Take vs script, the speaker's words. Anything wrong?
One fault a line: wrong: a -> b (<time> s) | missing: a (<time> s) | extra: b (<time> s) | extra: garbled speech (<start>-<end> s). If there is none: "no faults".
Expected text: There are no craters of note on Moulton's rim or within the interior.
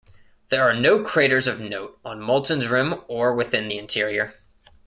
no faults